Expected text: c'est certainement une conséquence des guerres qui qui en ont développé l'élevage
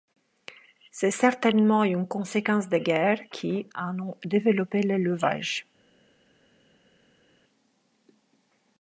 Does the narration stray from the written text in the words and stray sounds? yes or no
yes